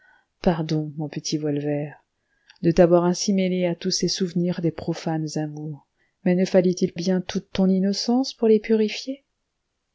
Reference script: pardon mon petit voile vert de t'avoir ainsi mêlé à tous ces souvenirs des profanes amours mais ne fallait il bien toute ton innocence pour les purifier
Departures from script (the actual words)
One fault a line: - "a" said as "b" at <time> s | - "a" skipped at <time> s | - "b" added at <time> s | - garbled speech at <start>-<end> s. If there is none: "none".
none